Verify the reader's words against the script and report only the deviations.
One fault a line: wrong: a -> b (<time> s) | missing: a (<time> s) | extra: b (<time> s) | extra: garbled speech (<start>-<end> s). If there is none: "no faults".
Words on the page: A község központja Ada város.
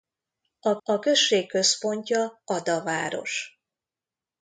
extra: a (0.8 s)